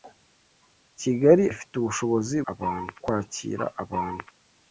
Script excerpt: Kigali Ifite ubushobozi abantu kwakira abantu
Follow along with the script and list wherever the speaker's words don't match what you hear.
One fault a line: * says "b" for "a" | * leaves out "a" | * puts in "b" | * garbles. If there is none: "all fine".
all fine